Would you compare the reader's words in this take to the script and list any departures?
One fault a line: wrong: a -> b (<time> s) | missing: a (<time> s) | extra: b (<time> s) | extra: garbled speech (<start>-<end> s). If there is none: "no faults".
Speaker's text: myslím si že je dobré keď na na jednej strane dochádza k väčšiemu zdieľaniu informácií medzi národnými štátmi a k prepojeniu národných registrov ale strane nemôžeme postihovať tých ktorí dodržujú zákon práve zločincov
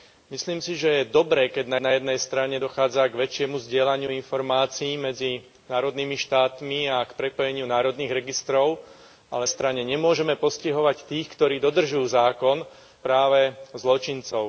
no faults